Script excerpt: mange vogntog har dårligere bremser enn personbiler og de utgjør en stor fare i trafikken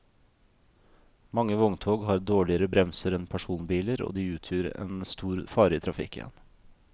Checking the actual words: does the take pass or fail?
pass